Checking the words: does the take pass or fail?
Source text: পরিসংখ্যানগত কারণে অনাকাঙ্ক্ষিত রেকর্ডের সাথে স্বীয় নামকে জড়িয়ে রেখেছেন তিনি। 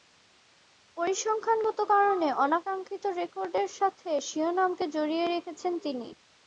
pass